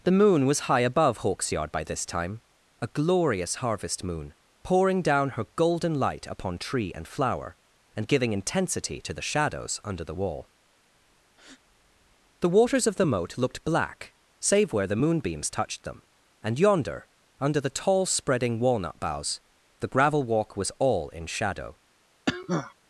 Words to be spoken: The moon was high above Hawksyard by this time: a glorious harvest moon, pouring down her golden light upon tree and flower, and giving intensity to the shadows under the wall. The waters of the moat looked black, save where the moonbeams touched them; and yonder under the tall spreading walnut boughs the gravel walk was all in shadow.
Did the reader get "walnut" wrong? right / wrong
right